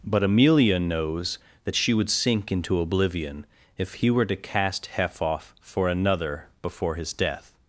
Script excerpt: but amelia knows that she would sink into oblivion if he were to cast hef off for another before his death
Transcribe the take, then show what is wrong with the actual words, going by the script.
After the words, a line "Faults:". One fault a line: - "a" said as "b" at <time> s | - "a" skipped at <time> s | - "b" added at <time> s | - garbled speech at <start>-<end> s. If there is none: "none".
but amelia knows that she would sink into oblivion if he were to cast hef off for another before his death
Faults:
none